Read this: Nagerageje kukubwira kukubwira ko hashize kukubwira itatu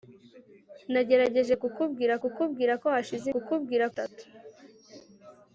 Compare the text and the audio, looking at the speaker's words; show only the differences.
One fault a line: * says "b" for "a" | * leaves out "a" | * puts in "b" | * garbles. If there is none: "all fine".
all fine